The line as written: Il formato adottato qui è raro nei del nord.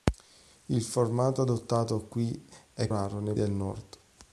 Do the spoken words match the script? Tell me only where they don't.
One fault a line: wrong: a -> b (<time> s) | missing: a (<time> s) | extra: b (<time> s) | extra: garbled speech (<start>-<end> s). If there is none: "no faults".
no faults